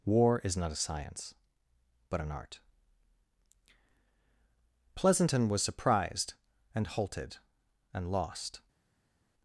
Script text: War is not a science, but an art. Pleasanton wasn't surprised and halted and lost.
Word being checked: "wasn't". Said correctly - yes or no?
no